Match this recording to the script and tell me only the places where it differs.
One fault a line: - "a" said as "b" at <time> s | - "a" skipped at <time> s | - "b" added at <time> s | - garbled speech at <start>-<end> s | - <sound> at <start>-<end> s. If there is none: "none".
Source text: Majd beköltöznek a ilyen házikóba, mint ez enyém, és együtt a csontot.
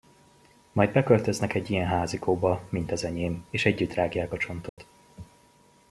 - "a" said as "egy" at 1.5 s
- "ez" said as "az" at 2.9 s
- "rágják" added at 3.9 s
- dropout at 4.7-4.8 s